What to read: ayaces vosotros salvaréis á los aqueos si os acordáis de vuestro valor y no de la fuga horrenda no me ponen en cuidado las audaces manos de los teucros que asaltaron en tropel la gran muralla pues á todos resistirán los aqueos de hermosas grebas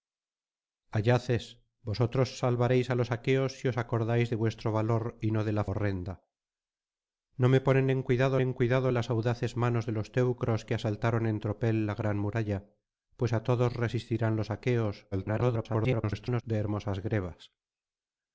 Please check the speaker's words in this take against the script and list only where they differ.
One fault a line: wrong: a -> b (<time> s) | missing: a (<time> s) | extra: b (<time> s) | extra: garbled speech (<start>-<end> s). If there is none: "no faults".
missing: fuga (5.6 s)
extra: en cuidado (8.4 s)
extra: garbled speech (15.1-16.4 s)